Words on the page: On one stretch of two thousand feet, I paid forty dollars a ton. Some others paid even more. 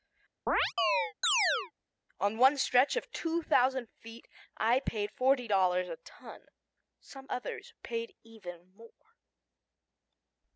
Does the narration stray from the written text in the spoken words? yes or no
no